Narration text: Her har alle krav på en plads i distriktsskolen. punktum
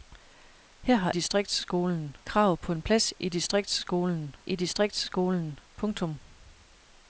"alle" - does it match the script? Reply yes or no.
no